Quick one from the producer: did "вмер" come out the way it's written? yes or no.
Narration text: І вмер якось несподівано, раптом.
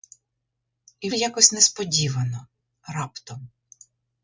no